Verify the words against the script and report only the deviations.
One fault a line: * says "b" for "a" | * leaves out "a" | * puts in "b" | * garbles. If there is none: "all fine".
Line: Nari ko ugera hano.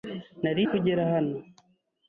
all fine